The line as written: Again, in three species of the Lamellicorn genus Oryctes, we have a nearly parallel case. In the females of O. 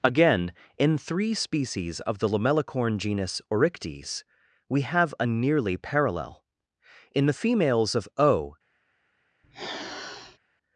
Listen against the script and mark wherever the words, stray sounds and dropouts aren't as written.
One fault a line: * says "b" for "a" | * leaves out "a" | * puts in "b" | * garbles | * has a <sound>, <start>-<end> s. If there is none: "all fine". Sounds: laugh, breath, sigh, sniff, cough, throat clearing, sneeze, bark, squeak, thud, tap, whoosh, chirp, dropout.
* leaves out "case"
* has a sniff, 9.4-10.4 s